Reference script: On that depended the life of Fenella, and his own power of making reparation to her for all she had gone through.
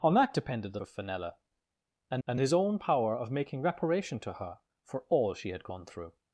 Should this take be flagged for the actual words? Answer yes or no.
yes